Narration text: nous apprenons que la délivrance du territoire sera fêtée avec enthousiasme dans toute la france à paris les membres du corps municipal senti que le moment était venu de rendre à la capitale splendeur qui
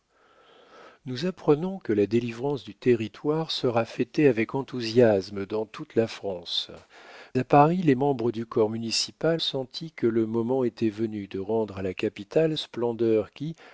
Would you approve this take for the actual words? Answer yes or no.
yes